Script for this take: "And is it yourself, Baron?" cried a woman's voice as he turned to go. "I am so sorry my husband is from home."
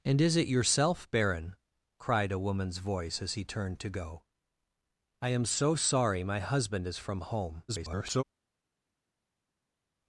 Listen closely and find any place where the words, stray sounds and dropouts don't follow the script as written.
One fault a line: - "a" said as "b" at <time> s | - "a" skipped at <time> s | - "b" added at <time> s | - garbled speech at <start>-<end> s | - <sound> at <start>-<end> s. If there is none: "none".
- garbled speech at 7.7-8.2 s